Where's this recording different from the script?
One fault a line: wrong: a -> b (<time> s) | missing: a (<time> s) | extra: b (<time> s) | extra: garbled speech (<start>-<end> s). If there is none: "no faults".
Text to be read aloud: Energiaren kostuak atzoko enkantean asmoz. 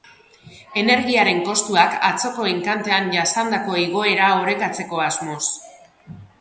extra: jasandako igoera orekatzeko (3.2 s)